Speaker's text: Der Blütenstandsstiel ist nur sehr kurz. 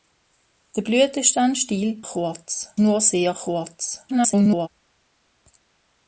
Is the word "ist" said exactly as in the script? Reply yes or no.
no